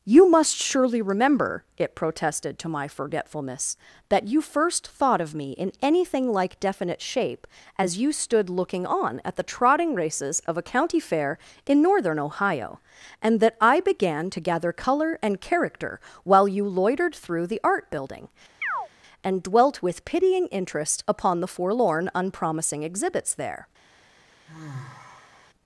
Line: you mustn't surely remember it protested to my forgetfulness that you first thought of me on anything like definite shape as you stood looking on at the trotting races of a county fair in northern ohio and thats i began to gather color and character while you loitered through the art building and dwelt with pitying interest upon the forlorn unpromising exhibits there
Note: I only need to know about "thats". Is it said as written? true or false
false